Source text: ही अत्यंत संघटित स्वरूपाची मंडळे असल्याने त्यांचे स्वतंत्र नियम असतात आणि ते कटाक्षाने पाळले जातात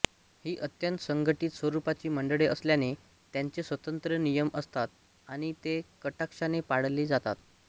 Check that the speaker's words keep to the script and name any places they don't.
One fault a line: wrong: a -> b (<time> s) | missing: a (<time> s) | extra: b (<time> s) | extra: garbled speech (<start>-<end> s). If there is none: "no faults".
no faults